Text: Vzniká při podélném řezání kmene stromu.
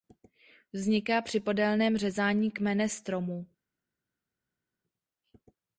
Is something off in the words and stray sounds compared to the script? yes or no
no